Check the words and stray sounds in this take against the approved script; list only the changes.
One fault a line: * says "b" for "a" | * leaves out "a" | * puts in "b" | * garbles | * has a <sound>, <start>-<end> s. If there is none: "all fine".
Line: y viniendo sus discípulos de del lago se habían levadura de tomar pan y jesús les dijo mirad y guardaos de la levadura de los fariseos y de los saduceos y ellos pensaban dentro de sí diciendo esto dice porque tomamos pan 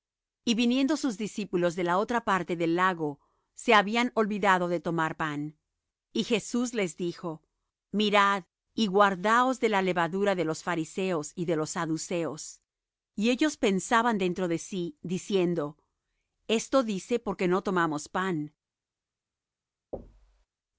* puts in "la otra parte"
* says "olvidado" for "levadura"
* puts in "no"
* has a thud, 19.9-20.5 s